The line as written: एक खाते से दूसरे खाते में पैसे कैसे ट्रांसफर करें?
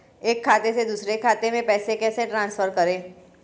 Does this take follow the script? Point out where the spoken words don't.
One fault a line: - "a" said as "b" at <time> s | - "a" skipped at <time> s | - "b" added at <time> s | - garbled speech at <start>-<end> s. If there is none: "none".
none